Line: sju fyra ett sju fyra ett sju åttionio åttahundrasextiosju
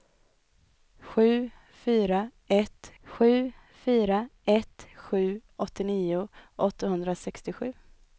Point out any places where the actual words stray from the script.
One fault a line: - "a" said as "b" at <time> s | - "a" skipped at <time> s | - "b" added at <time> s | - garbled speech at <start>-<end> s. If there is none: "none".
none